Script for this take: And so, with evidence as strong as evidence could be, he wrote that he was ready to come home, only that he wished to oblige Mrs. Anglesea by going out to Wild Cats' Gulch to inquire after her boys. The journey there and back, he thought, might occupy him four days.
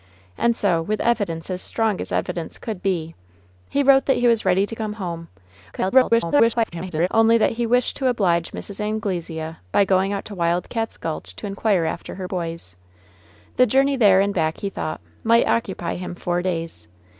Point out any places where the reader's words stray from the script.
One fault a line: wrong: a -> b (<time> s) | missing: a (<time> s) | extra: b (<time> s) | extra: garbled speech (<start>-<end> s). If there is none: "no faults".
extra: garbled speech (5.7-7.1 s)